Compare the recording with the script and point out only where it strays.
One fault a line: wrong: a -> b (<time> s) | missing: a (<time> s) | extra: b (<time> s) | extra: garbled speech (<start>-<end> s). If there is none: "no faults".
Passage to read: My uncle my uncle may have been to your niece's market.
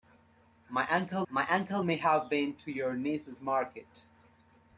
no faults